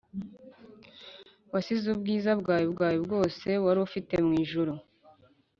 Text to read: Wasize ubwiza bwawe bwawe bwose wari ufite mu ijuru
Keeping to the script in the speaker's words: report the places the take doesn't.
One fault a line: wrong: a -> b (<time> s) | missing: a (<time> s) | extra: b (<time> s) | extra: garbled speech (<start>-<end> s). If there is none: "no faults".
no faults